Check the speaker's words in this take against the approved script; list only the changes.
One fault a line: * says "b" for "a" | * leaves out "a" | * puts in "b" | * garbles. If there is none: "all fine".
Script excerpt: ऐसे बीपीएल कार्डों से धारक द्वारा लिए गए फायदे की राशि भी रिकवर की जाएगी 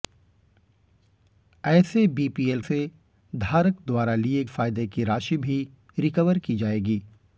* leaves out "कार्डों"
* leaves out "गए"